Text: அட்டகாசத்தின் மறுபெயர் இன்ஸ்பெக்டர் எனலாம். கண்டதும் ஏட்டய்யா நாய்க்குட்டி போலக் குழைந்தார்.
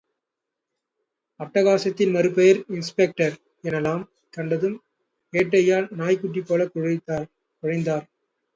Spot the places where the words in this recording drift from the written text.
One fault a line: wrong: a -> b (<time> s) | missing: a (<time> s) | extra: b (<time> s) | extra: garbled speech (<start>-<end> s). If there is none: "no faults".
no faults